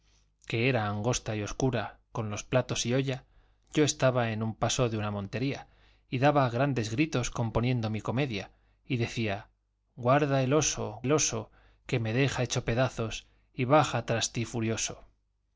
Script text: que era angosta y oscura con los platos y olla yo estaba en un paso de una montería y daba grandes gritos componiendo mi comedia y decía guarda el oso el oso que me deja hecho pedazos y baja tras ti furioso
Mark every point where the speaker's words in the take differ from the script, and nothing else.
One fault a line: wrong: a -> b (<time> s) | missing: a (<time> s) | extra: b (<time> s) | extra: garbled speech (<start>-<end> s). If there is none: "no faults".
no faults